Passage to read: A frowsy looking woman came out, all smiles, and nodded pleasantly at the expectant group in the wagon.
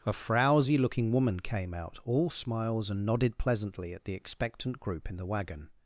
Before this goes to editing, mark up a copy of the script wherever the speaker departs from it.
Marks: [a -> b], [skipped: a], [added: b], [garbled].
A frowsy looking woman came out, all smiles, and nodded pleasantly at the expectant group in the wagon.